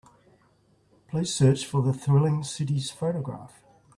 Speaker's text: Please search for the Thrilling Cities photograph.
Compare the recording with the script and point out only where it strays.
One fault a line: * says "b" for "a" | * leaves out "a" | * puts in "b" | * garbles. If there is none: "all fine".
all fine